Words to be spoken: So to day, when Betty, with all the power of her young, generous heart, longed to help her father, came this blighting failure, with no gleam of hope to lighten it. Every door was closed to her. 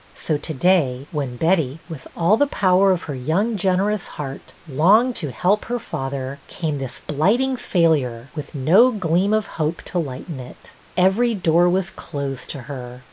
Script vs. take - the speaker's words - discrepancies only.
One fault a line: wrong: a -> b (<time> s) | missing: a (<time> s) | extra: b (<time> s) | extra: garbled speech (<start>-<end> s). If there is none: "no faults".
no faults